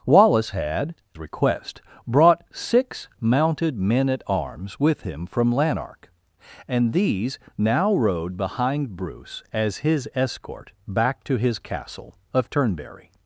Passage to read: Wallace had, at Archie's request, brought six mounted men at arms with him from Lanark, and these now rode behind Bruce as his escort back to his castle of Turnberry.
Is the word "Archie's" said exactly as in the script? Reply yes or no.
no